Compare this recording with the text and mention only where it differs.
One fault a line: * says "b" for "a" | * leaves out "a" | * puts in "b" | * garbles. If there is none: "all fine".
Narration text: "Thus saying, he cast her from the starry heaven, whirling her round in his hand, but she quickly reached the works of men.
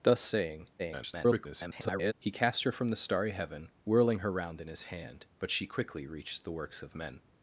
* garbles